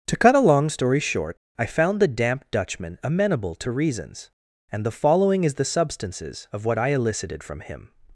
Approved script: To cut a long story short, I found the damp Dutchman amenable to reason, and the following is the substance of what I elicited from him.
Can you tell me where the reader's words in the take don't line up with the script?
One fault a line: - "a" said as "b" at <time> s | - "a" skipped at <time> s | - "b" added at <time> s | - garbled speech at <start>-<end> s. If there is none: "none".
- "reason" said as "reasons" at 3.7 s
- "substance" said as "substances" at 5.7 s